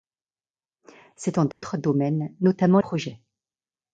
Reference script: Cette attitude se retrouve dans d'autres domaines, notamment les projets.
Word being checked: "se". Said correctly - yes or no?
no